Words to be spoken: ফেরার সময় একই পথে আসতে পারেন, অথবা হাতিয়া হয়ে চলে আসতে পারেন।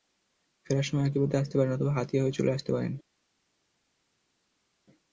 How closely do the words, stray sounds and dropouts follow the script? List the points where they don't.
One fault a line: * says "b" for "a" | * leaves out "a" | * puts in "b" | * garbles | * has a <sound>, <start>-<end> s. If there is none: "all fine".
all fine